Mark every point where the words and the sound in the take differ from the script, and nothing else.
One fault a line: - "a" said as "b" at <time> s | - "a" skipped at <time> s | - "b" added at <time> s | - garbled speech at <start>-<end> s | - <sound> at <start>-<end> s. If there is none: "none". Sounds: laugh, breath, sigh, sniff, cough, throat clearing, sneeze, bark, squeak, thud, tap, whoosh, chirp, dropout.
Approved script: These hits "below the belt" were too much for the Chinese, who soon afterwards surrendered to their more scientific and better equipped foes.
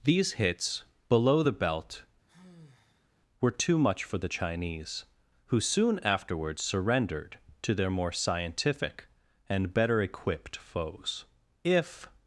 - sigh at 2.3-3.1 s
- "If" added at 11.6 s